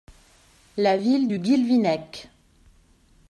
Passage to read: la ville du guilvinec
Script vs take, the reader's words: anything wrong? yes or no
no